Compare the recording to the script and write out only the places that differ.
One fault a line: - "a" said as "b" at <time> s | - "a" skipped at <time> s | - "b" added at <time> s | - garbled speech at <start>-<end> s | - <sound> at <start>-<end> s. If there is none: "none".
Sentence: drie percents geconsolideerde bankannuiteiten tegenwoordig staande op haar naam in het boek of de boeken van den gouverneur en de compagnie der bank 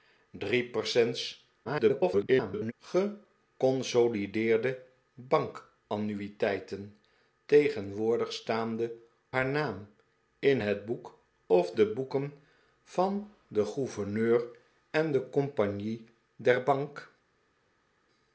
- garbled speech at 1.6-2.7 s
- "op" skipped at 8.9 s